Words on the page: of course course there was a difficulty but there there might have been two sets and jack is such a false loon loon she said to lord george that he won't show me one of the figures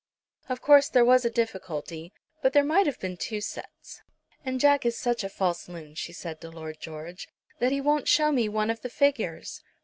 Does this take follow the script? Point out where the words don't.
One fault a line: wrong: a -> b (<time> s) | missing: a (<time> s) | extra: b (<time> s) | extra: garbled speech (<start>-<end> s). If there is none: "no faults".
missing: course (0.9 s)
missing: there (2.6 s)
missing: loon (5.9 s)